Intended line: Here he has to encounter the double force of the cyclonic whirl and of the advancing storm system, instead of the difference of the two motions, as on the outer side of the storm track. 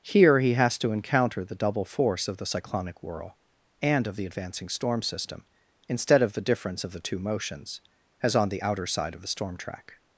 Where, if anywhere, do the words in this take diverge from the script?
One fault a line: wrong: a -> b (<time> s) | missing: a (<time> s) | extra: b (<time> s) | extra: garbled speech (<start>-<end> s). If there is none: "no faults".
no faults